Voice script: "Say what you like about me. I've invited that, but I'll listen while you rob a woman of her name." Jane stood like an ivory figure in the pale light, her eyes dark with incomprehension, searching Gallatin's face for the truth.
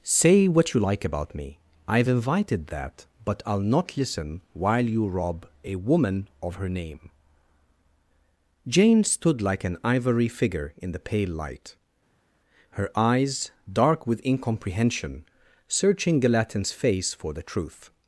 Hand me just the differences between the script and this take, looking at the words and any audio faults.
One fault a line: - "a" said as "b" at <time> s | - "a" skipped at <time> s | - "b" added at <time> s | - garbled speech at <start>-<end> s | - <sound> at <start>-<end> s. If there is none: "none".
- "not" added at 3.7 s